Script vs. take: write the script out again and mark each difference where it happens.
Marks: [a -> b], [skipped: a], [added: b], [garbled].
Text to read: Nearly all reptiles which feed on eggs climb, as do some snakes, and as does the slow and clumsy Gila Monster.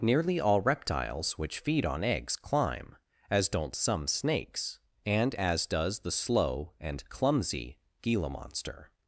Nearly all reptiles which feed on eggs climb, as [do -> don't] some snakes, and as does the slow and clumsy Gila Monster.